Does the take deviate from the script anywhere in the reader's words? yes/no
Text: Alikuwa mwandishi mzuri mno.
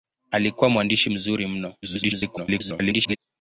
yes